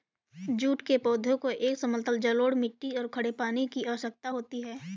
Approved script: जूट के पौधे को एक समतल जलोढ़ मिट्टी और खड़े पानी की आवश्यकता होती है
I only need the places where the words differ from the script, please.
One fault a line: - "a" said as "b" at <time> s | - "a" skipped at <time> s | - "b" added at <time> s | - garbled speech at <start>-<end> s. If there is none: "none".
none